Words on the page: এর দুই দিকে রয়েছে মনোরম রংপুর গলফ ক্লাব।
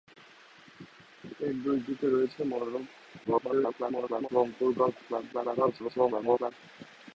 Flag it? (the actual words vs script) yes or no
yes